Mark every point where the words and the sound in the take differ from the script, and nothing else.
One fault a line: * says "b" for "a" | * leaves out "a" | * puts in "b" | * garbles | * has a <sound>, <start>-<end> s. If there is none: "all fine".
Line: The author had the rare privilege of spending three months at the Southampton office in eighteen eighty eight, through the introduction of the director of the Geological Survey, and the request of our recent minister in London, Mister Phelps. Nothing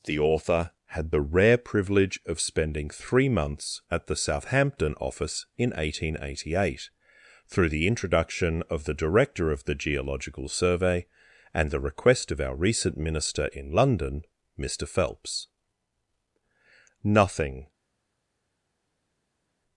all fine